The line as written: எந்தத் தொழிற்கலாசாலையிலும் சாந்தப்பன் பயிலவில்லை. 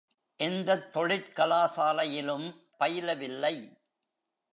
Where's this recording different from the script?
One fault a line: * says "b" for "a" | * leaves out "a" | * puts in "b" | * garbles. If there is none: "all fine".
* leaves out "சாந்தப்பன்"